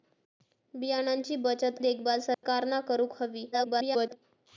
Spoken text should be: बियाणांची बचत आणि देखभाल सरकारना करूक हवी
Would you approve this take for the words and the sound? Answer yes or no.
no